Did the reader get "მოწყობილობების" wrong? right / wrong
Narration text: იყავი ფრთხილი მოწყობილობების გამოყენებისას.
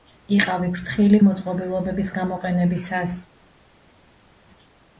right